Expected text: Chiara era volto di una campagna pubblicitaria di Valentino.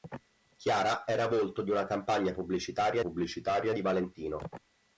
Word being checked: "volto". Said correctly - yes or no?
yes